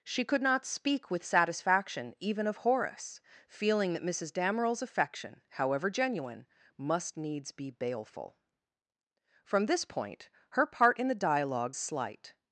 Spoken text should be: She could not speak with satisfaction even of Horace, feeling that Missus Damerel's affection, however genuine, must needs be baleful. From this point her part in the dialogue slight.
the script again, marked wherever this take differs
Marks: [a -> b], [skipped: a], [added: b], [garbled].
She could not speak with satisfaction even of Horace, feeling that Missus Damerel's affection, however genuine, must needs be baleful. From this point her part in the dialogue slight.